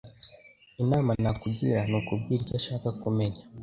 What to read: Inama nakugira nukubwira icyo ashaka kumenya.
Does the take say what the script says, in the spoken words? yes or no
yes